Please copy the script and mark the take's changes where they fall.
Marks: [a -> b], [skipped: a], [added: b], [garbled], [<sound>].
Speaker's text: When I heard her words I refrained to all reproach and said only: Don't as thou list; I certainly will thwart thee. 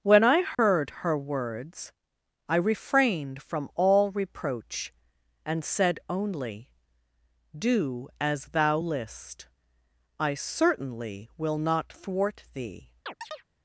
When I heard [dropout] her words I refrained [to -> from] all reproach and said only: [Don't -> Do] as thou list; I certainly will [added: not] thwart thee. [chirp]